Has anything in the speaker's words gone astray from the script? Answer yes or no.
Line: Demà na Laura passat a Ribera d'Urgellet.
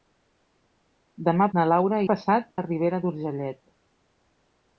no